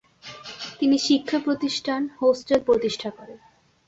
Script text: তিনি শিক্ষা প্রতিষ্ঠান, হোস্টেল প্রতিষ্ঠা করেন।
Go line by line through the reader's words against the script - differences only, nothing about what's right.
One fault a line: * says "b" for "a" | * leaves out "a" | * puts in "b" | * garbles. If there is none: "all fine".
all fine